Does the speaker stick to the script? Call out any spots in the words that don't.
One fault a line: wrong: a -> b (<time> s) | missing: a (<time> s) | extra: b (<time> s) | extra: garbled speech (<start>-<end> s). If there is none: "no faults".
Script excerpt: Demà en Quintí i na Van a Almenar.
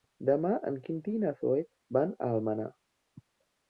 extra: Zoè (1.4 s)